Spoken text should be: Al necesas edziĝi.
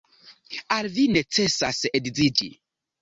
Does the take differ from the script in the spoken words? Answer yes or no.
yes